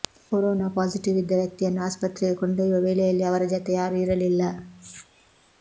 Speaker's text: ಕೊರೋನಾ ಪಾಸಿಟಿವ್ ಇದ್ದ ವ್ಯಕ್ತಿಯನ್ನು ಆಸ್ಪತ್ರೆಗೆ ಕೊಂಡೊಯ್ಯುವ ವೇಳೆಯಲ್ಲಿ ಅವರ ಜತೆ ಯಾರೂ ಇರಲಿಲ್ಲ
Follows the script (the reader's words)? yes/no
yes